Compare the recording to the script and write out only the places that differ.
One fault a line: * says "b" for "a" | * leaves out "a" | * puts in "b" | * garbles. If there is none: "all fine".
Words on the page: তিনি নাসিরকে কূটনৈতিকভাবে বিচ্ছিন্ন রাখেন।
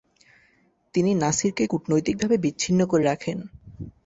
* puts in "করে"